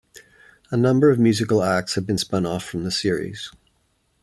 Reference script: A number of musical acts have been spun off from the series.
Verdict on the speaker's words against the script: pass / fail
pass